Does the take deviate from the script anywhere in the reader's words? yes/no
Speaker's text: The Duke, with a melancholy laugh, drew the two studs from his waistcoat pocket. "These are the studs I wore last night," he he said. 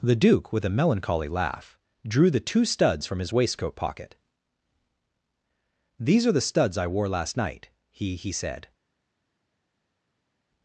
no